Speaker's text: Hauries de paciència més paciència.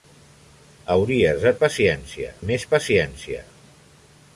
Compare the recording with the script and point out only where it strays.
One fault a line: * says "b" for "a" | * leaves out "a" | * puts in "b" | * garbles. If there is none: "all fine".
all fine